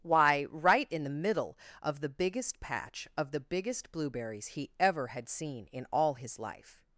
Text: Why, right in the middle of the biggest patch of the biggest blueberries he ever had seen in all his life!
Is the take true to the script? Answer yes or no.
yes